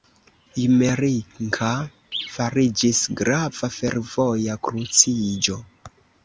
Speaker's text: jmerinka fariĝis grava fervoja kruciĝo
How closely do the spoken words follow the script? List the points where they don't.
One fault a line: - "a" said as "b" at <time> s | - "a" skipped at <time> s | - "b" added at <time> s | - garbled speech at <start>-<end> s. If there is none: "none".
none